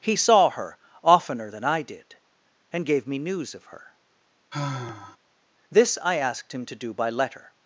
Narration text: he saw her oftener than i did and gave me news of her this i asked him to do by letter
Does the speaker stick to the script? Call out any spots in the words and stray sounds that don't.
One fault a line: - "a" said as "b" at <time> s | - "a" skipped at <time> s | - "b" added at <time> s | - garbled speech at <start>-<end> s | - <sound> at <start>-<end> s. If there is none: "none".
- sigh at 4.5-5.2 s